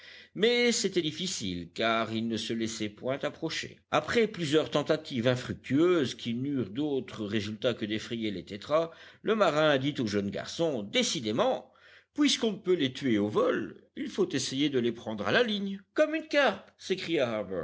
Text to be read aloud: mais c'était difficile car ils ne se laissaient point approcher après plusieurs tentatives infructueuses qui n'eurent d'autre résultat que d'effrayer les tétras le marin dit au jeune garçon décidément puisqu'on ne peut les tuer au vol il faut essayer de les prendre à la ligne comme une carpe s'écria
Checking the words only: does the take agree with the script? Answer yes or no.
yes